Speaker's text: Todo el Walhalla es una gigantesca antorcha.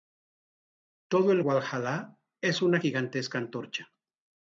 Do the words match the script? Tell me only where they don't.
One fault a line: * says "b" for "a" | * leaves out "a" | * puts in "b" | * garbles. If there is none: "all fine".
all fine